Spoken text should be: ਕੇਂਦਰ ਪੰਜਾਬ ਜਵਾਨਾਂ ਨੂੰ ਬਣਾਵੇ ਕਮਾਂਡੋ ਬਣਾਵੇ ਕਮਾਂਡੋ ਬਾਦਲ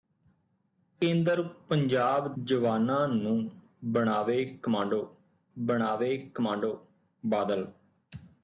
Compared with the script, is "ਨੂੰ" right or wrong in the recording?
right